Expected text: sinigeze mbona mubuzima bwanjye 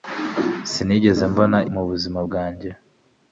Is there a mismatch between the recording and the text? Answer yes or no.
no